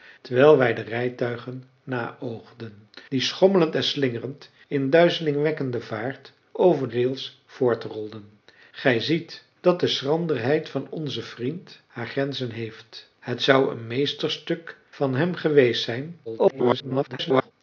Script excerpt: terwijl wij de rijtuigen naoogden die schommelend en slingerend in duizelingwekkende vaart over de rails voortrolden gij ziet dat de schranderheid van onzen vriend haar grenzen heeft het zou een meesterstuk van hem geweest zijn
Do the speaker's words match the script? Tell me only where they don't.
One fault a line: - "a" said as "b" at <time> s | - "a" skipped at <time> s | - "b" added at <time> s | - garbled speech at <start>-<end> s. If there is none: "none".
- "de" skipped at 6.9 s
- garbled speech at 16.2-17.5 s